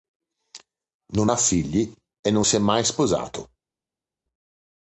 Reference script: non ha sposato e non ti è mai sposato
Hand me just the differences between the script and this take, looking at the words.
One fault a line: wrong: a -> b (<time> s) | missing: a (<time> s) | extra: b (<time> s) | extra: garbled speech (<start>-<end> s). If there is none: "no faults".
wrong: sposato -> figli (1.4 s)
wrong: ti -> si (2.4 s)